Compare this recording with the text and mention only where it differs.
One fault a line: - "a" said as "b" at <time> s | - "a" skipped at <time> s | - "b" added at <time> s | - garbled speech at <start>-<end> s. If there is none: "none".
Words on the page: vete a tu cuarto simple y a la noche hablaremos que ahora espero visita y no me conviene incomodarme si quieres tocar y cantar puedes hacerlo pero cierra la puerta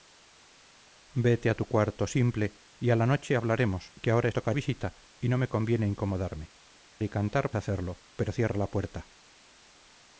- "espero" said as "tocar" at 4.3 s
- "si quieres tocar" skipped at 6.5 s
- "puedes" skipped at 7.5 s